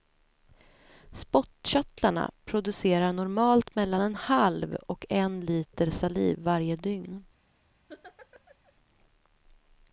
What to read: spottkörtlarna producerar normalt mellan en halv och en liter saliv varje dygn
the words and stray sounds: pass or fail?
fail